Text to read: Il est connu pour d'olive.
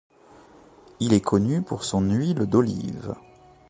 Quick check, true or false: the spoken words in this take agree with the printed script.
false